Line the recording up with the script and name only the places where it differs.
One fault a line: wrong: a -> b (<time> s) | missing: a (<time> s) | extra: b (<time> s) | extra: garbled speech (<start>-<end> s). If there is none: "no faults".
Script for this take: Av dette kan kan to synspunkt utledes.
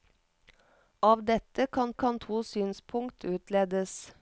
no faults